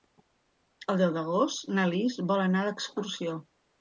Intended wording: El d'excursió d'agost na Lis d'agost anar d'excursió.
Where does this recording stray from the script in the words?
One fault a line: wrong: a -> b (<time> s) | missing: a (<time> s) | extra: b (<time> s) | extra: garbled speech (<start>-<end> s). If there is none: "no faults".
wrong: d'excursió -> deu (1.0 s)
wrong: d'agost -> vol (2.3 s)